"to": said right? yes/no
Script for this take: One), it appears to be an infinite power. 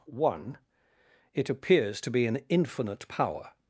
yes